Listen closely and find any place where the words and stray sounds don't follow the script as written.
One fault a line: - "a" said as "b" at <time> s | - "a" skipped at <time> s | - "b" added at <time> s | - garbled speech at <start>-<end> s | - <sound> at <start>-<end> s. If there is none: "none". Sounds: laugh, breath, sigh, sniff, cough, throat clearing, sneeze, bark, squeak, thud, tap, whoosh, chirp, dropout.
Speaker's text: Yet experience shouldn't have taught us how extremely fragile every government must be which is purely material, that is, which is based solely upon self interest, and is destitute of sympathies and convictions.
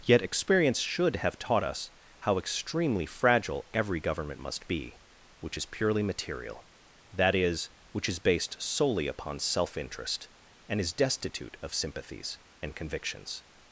- "shouldn't" said as "should" at 0.8 s